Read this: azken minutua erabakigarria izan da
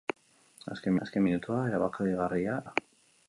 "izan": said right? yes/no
no